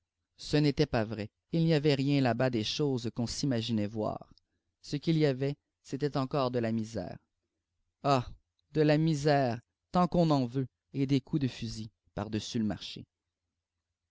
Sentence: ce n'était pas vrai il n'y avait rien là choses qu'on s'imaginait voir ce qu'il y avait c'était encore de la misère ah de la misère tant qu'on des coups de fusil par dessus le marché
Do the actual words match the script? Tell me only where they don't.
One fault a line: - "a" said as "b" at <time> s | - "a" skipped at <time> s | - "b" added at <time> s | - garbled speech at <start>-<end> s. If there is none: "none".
- "bas des" added at 2.3 s
- "en veut et" added at 10.3 s